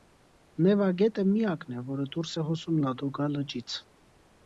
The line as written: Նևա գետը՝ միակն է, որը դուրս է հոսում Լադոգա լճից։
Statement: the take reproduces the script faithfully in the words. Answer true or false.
true